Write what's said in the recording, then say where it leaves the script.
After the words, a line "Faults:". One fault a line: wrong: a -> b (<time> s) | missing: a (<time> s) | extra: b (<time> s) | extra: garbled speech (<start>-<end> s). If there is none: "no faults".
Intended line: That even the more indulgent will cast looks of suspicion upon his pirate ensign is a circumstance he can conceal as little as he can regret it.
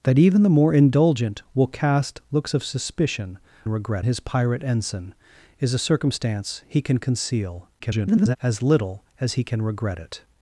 That even the more indulgent will cast looks of suspicion regret his pirate ensign is a circumstance he can conceal [garbled] as little as he can regret it.
Faults:
wrong: upon -> regret (3.7 s)
extra: garbled speech (7.8-8.4 s)